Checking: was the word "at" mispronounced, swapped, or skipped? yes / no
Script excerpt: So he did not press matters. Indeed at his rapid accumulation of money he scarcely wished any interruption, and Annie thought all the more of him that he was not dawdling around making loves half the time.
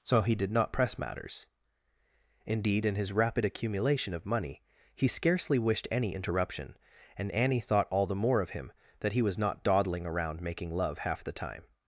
yes